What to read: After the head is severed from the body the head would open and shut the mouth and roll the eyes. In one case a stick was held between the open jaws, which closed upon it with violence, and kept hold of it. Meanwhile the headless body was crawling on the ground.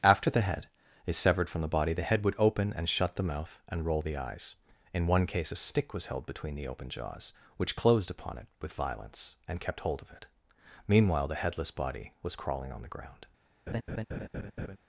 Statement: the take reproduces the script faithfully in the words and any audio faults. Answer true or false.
false